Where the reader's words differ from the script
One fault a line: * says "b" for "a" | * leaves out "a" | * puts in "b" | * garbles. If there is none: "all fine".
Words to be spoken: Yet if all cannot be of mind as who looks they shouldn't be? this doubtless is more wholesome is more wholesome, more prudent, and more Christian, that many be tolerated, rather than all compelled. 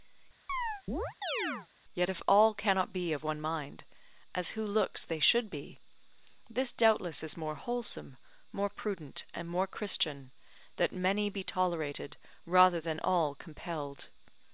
* puts in "one"
* says "should" for "shouldn't"
* leaves out "is more wholesome"